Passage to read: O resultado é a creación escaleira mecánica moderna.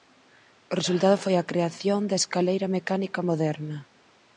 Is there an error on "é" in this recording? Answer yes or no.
yes